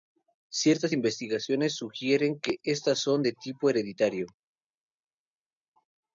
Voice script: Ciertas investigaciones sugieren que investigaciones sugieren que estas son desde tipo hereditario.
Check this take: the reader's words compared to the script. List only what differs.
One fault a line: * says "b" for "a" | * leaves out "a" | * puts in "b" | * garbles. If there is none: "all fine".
* leaves out "investigaciones sugieren que"
* says "de" for "desde"